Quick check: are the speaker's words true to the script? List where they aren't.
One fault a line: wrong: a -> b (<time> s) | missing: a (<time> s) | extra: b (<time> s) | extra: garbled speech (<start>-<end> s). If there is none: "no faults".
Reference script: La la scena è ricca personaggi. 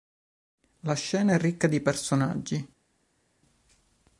missing: la (0.9 s)
extra: di (1.7 s)